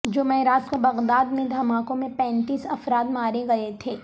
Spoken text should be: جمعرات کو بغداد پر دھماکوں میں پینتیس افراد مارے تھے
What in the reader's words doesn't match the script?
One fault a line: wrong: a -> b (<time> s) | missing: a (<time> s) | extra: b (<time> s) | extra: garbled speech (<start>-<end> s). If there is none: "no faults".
wrong: پر -> میں (1.3 s)
extra: گئے (3.5 s)